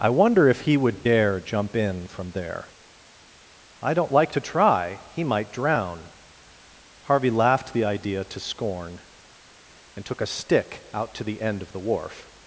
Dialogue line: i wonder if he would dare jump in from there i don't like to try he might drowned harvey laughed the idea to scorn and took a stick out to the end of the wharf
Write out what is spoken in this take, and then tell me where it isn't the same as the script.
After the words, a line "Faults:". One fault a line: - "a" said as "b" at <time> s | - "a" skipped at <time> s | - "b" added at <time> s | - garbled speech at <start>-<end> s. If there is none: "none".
i wonder if he would dare jump in from there i don't like to try he might drown harvey laughed the idea to scorn and took a stick out to the end of the wharf
Faults:
- "drowned" said as "drown" at 5.5 s